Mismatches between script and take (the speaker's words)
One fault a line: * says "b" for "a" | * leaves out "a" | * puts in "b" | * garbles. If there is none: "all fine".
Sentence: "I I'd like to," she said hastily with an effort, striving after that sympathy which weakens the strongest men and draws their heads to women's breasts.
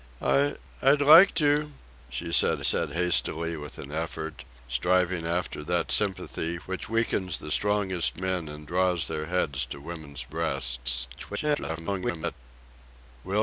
* puts in "said"
* garbles